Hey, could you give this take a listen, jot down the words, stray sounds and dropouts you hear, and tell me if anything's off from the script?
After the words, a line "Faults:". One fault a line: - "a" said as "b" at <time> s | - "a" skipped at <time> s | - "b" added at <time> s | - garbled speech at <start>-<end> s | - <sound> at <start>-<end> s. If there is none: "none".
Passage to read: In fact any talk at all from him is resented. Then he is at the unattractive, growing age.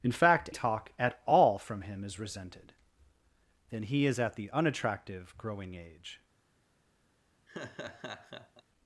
In fact talk at all from him is resented. Then he is at the unattractive, growing age.
Faults:
- "any" skipped at 0.5 s
- laugh at 7.5-8.6 s